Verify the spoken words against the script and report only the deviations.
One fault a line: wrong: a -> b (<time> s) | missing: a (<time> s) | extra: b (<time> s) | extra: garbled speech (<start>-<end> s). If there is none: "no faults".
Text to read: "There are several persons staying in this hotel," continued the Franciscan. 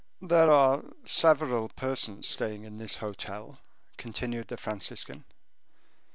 no faults